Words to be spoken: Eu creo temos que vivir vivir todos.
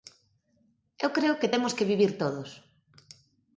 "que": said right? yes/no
yes